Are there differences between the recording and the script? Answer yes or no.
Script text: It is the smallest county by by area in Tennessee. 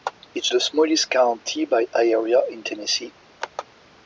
yes